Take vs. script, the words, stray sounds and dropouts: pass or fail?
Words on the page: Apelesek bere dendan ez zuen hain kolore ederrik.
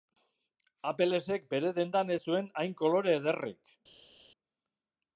pass